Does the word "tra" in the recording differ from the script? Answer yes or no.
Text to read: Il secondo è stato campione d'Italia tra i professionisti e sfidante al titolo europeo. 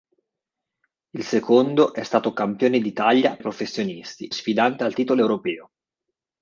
yes